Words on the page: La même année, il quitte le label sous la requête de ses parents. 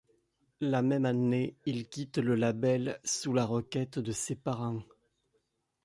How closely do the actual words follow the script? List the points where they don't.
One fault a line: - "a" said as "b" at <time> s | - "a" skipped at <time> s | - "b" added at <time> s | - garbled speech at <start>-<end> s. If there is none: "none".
none